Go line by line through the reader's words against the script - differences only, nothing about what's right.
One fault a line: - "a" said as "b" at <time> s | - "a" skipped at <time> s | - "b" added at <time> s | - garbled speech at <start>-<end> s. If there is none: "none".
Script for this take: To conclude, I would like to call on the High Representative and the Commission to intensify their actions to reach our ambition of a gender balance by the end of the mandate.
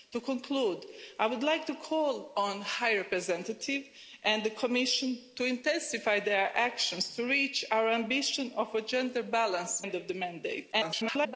- "by the" skipped at 9.8 s
- garbled speech at 10.7-11.4 s